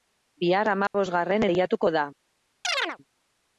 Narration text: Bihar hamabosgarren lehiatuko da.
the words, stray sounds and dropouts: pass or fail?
fail